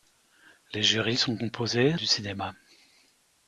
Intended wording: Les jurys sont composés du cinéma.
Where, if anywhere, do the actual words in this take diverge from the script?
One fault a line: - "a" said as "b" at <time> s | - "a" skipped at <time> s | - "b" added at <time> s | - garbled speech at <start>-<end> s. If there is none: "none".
none